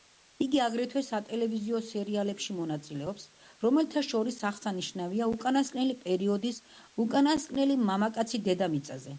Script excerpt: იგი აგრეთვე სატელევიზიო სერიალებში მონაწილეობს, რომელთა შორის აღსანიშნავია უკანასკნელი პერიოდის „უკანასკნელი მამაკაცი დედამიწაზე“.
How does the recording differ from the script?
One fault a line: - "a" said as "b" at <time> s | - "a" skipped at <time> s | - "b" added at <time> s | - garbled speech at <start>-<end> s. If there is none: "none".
none